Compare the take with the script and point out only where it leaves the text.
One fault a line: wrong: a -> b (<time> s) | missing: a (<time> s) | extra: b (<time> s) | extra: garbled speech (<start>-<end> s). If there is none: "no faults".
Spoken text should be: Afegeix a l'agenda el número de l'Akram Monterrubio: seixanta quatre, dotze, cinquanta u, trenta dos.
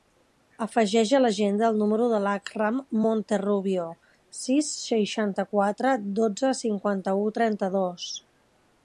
extra: sis (4.4 s)